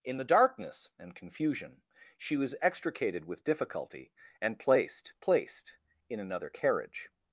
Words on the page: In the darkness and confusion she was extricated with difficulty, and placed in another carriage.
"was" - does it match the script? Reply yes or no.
yes